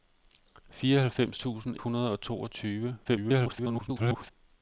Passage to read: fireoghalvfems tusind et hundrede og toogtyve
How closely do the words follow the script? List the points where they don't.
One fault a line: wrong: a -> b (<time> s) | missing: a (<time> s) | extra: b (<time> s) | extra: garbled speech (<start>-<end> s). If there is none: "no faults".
missing: et (1.8 s)
extra: garbled speech (3.0-4.3 s)